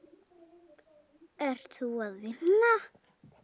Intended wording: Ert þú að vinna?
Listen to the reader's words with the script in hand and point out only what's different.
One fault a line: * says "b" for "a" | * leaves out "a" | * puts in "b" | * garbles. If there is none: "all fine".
all fine